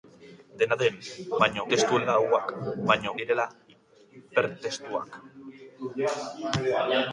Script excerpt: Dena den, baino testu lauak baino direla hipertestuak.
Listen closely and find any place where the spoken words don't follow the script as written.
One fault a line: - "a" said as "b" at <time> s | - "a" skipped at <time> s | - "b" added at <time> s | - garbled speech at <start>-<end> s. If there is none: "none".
none